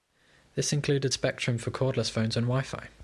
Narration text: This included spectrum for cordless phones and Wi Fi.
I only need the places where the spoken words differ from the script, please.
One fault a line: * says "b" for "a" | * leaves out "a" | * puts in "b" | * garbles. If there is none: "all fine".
all fine